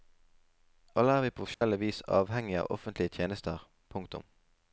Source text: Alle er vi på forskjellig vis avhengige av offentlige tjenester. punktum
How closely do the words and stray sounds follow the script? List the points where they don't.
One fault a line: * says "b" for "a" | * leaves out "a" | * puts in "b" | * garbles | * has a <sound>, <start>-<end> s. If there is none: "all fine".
* has a dropout, 1.5-1.6 s